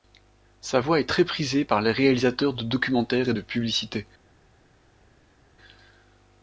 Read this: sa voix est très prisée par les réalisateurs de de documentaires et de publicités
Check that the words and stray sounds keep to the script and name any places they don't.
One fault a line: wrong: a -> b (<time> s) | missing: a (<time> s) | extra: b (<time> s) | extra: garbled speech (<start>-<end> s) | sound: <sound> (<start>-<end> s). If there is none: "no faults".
missing: de (2.6 s)